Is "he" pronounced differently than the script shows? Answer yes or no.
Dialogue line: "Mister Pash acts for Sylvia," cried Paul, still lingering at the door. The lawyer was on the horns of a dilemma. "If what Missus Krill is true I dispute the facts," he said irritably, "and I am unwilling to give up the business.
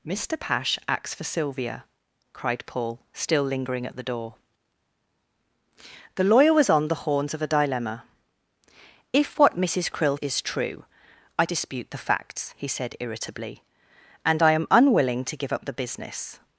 no